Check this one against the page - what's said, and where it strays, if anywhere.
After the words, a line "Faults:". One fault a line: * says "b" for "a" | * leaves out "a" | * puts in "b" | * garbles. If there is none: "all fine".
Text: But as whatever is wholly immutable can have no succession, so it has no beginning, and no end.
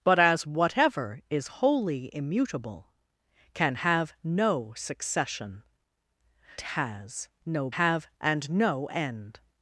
But as whatever is wholly immutable can have no succession, has no have, and no end.
Faults:
* leaves out "so it"
* says "have" for "beginning"